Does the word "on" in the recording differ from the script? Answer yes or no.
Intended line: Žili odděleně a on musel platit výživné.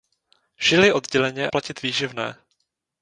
yes